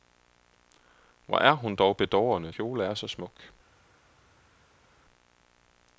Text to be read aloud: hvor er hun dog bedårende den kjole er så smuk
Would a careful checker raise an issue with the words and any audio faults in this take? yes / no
yes